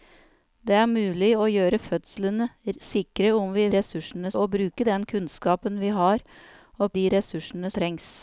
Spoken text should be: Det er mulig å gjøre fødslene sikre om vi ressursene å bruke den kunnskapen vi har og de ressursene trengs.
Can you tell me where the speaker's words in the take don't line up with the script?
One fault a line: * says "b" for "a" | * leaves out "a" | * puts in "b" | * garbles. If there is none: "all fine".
all fine